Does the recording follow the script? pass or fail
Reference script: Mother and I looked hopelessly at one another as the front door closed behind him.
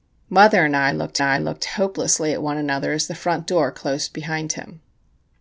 fail